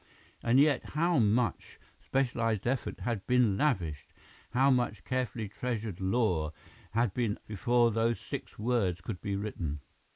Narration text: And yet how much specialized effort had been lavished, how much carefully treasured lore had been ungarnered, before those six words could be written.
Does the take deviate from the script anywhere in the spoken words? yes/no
yes